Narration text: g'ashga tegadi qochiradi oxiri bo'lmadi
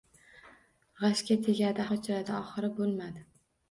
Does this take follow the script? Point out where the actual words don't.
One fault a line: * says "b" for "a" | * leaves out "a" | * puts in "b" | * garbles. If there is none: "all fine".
all fine